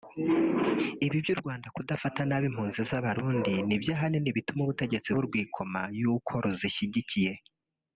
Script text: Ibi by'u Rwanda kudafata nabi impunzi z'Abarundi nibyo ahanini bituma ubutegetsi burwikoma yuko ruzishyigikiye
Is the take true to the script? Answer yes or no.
yes